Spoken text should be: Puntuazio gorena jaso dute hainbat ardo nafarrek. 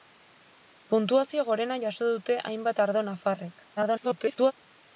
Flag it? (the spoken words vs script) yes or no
yes